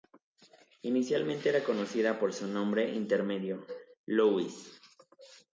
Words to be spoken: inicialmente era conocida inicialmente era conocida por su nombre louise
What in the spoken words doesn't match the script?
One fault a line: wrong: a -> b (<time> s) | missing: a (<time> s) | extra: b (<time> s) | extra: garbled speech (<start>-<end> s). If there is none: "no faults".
missing: inicialmente era conocida (2.2 s)
extra: intermedio (3.0 s)